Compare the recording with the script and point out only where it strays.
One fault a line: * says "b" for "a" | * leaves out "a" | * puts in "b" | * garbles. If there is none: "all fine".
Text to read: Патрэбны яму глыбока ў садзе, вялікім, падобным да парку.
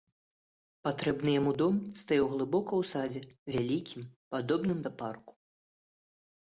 * puts in "дом стаяў"